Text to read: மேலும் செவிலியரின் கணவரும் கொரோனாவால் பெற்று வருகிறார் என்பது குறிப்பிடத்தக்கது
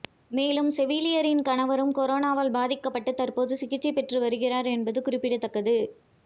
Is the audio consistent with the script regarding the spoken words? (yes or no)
no